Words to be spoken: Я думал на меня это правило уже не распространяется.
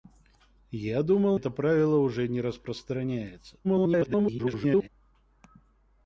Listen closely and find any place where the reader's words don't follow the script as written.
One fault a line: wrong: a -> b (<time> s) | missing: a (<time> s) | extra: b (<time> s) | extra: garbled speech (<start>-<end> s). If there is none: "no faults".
missing: на меня (1.4 s)
extra: garbled speech (3.6-4.9 s)